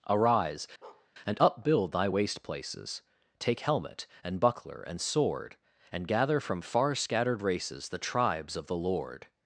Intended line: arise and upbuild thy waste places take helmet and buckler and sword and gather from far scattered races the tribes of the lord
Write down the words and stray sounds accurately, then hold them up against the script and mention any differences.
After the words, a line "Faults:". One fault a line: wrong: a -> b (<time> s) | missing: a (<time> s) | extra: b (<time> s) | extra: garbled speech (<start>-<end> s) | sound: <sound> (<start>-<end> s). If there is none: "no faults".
arise and upbuild thy waste places take helmet and buckler and sword and gather from far scattered races the tribes of the lord
Faults:
sound: bark (0.8-1.1 s)